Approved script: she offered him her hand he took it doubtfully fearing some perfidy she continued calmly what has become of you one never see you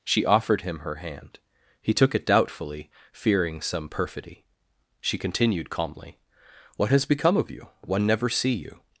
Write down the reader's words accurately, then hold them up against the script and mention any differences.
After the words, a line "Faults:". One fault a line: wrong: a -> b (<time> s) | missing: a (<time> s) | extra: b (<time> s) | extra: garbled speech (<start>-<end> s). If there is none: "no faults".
she offered him her hand he took it doubtfully fearing some perfidy she continued calmly what has become of you one never see you
Faults:
no faults